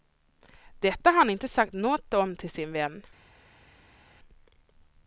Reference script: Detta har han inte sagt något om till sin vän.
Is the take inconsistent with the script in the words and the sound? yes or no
no